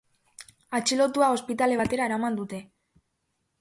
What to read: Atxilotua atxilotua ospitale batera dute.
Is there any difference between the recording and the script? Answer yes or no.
yes